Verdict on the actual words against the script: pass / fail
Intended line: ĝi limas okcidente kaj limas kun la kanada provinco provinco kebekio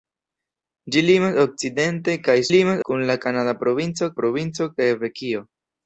pass